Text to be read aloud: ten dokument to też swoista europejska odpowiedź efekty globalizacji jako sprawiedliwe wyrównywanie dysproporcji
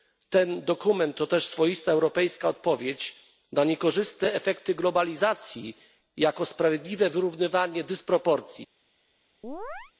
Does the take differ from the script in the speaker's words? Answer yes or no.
yes